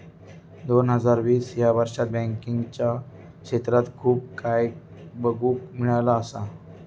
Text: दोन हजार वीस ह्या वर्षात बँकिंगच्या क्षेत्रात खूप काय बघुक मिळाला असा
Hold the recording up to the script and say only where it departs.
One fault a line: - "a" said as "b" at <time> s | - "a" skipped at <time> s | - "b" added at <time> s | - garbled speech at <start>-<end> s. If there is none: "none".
none